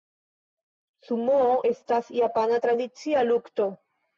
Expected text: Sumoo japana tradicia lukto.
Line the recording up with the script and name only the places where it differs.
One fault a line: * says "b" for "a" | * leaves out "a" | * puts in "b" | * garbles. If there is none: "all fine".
* puts in "estas"